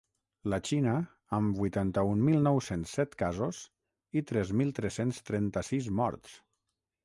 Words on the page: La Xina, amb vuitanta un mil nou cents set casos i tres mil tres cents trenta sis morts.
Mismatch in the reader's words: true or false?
false